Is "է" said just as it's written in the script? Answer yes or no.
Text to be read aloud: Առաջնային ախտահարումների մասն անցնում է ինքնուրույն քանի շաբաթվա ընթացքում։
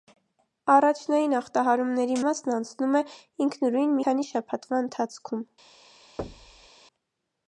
yes